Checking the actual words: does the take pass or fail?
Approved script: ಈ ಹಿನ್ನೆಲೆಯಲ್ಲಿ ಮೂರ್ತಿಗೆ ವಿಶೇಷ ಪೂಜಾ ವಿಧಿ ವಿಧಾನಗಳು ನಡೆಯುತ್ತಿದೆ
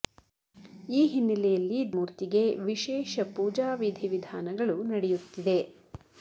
pass